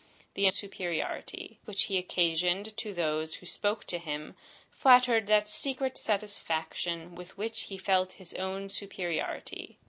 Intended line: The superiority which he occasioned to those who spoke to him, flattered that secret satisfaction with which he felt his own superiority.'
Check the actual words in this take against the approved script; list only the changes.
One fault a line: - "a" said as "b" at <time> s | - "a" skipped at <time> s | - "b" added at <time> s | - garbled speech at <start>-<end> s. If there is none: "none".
none